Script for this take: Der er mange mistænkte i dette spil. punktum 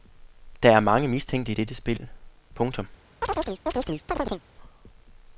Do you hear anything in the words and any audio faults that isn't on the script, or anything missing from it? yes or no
yes